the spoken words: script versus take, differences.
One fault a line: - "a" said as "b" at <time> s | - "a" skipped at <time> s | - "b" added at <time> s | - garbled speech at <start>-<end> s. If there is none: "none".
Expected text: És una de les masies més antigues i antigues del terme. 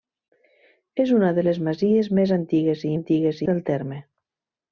none